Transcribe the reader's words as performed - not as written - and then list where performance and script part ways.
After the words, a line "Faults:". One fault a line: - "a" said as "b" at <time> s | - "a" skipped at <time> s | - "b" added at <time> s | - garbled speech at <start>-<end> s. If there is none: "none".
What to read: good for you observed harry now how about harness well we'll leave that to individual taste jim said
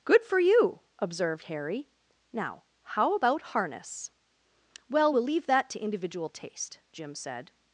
good for you observed harry now how about harness well we'll leave that to individual taste jim said
Faults:
none